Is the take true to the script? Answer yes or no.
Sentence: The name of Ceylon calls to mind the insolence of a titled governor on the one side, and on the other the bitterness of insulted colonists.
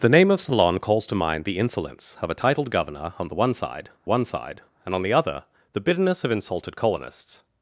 no